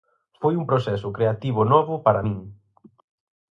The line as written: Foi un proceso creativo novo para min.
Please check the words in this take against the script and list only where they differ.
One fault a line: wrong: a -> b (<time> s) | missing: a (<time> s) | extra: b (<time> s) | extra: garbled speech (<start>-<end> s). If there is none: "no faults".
no faults